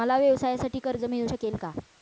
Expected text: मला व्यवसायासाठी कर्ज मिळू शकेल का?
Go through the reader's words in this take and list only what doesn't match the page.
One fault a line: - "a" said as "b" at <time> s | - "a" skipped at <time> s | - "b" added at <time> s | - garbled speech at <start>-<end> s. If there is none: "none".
none